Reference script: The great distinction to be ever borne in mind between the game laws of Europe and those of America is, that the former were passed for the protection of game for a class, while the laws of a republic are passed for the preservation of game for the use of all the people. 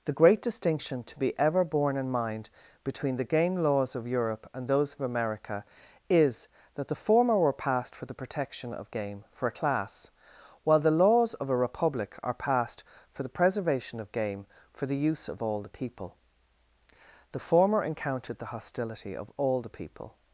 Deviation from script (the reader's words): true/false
true